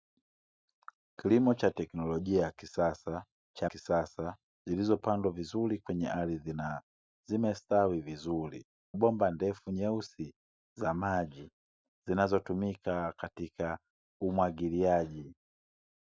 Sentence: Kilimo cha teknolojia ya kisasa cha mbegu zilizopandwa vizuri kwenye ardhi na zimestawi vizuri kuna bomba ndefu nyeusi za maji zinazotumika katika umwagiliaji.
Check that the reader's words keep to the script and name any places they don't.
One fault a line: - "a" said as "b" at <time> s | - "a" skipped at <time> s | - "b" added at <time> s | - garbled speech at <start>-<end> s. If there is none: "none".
- "mbegu" said as "kisasa" at 3.6 s
- "kuna" skipped at 8.7 s